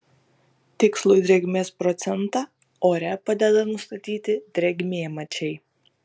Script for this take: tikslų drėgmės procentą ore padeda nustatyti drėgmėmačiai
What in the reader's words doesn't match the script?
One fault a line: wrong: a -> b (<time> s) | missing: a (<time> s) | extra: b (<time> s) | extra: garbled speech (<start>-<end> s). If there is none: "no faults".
no faults